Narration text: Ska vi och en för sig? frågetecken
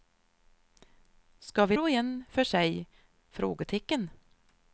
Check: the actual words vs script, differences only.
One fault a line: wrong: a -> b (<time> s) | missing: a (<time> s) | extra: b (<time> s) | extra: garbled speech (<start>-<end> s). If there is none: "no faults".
no faults